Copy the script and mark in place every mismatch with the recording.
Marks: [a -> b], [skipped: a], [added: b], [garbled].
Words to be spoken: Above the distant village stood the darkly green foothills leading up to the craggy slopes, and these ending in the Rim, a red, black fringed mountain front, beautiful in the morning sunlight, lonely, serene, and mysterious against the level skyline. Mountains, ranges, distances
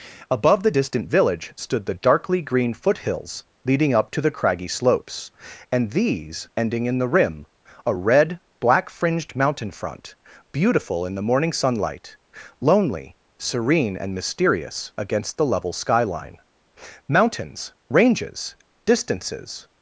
Above the distant village stood the darkly green foothills leading up to the craggy slopes, and these ending in the Rim, a red, black fringed mountain front, beautiful in the morning sunlight, lonely, serene, and mysterious against the level skyline. Mountains, ranges, distances